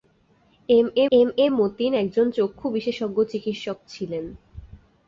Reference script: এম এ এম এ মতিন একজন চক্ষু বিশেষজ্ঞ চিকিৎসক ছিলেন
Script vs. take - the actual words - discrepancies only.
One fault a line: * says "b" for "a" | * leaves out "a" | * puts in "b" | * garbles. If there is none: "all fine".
all fine